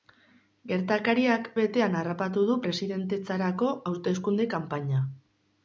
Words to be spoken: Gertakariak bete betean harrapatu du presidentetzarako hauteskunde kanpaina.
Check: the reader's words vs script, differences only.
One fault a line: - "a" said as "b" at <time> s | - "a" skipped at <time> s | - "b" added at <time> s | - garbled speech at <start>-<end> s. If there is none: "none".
- "bete" skipped at 1.5 s